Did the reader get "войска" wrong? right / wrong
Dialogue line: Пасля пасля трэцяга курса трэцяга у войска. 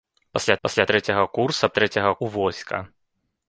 right